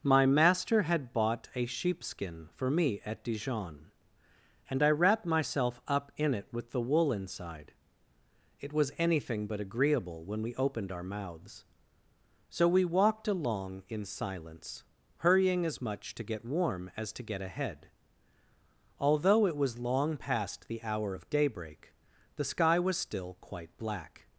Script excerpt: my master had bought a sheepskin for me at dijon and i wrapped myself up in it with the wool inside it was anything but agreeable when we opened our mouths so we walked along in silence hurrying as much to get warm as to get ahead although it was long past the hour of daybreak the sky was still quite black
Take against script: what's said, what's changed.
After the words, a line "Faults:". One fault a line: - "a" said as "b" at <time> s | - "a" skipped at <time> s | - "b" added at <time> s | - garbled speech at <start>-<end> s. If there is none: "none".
my master had bought a sheepskin for me at dijon and i wrapped myself up in it with the wool inside it was anything but agreeable when we opened our mouths so we walked along in silence hurrying as much to get warm as to get ahead although it was long past the hour of daybreak the sky was still quite black
Faults:
none